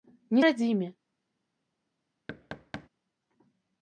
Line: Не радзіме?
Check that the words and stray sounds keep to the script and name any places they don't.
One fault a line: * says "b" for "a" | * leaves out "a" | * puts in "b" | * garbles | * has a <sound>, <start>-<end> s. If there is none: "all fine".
* has a thud, 2.3-2.9 s